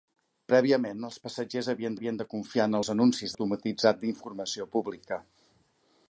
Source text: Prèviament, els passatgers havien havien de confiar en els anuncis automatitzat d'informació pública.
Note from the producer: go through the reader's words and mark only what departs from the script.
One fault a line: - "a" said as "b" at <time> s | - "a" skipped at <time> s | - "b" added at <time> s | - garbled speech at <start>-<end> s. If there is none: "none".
none